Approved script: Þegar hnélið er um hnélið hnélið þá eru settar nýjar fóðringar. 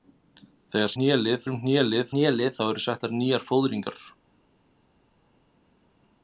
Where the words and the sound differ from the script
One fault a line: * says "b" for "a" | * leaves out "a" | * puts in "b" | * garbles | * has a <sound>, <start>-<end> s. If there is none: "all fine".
all fine